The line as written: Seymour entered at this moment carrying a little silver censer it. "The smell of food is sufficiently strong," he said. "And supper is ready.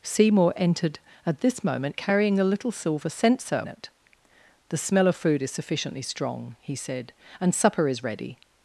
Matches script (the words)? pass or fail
pass